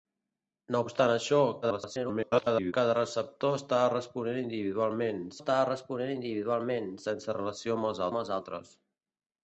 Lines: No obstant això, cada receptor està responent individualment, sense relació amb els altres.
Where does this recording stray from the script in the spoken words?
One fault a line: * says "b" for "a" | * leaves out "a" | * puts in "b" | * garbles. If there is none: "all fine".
* garbles
* puts in "està responent individualment"
* puts in "amb els"